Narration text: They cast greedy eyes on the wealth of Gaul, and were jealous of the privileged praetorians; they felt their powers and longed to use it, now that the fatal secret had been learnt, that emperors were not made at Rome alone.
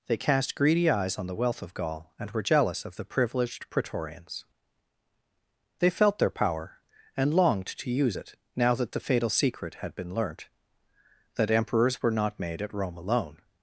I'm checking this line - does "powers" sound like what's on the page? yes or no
no